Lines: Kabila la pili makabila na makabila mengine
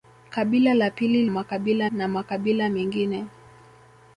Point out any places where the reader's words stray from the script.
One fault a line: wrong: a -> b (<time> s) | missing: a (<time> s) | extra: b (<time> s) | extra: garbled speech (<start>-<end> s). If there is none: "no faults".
no faults